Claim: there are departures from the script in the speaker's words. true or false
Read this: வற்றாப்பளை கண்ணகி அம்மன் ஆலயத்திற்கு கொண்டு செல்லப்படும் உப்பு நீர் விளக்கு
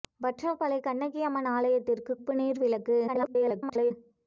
true